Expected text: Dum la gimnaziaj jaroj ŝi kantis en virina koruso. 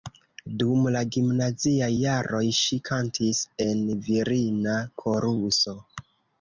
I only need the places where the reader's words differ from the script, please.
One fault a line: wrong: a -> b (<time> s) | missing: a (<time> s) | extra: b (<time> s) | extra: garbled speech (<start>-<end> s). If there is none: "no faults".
no faults